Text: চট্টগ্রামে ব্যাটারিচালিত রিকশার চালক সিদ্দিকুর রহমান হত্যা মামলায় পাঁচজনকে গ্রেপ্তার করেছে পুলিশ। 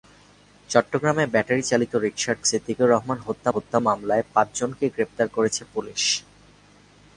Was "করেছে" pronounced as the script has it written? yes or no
yes